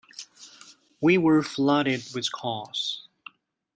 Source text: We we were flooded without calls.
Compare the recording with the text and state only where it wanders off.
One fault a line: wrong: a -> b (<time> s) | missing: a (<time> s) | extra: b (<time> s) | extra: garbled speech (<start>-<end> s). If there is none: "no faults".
missing: we (1.2 s)
wrong: without -> with (2.2 s)